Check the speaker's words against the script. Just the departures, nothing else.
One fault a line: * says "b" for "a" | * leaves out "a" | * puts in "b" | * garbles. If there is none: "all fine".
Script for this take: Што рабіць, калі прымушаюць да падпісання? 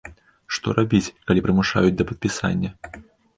all fine